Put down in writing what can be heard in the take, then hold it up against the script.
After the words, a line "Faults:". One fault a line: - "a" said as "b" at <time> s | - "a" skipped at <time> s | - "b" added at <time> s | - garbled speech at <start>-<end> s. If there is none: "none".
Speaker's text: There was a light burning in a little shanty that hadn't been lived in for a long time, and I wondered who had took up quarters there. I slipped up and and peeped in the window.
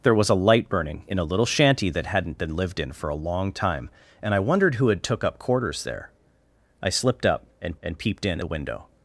There was a light burning in a little shanty that hadn't been lived in for a long time, and I wondered who had took up quarters there. I slipped up and and peeped in the window.
Faults:
none